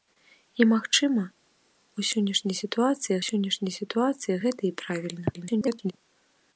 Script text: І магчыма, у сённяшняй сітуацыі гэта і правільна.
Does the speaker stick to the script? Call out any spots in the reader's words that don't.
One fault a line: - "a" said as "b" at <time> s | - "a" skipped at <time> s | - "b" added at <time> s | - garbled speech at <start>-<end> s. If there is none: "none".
- "сённяшняй сітуацыі" added at 3.3 s
- garbled speech at 5.3-5.9 s